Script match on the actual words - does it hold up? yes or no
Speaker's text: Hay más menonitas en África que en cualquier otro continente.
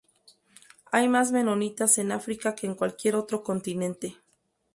yes